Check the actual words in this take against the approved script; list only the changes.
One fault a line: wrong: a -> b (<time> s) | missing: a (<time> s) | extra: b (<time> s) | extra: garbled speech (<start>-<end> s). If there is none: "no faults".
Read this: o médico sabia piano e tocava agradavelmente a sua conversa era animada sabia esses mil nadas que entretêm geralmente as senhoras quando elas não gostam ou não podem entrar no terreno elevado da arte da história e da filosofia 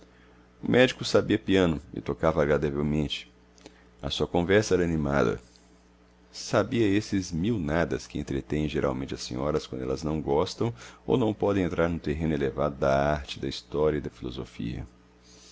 no faults